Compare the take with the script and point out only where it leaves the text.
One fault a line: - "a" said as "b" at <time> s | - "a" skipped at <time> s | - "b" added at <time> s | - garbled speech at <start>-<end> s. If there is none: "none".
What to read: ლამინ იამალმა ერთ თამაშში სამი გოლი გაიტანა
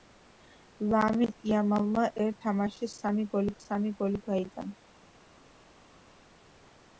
- "სამი გოლი" added at 3.6 s